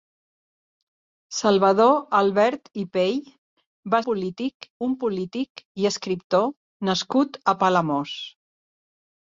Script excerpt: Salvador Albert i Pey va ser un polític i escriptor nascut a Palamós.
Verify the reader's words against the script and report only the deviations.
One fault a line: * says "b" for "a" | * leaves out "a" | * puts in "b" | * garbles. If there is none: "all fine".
* says "polític" for "ser"